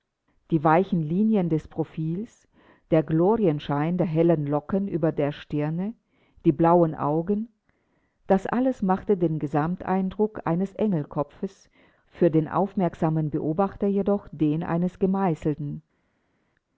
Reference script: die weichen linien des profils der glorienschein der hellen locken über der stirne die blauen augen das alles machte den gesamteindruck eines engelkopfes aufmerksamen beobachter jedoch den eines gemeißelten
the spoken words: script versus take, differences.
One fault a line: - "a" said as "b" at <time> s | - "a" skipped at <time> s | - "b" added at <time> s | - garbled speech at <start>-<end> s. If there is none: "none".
- "für den" added at 12.1 s